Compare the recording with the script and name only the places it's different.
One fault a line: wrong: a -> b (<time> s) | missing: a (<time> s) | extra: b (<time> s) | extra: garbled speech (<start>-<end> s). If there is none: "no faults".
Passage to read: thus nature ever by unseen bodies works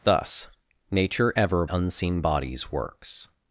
missing: by (1.6 s)